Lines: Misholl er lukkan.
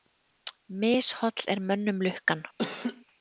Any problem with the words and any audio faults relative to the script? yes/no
yes